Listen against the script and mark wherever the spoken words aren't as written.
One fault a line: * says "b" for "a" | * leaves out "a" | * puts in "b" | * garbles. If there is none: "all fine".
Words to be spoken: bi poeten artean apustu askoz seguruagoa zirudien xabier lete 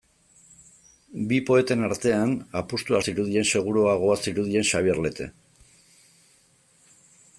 * says "zirudien" for "askoz"